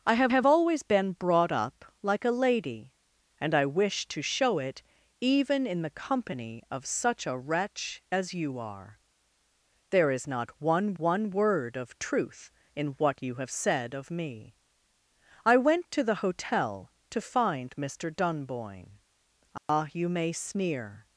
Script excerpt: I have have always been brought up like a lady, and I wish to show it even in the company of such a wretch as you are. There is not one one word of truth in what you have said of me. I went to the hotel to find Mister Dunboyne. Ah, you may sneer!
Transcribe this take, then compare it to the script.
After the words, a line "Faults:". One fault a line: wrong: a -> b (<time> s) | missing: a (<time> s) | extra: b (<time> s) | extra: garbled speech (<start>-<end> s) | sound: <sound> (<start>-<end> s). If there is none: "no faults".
I have have always been brought up like a lady, and I wish to show it even in the company of such a wretch as you are. There is not one one word of truth in what you have said of me. I went to the hotel to find Mister Dunboyne. Ah, you may sneer!
Faults:
sound: dropout (19.6-19.7 s)